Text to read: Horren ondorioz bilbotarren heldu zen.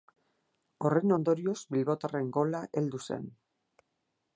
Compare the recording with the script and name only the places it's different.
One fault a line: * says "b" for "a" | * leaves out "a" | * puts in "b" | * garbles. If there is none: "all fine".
* puts in "gola"